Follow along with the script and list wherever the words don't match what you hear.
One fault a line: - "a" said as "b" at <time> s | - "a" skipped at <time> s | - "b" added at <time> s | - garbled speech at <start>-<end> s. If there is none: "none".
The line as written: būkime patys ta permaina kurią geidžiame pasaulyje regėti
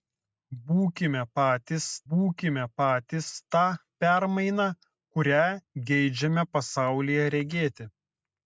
- "būkime patys" added at 2.1 s